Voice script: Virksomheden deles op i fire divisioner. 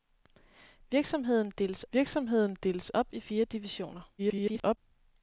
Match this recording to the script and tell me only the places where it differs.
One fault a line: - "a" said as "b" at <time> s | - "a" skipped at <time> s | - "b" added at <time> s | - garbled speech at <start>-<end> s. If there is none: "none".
- "virksomheden deles" added at 1.9 s
- garbled speech at 4.2-4.8 s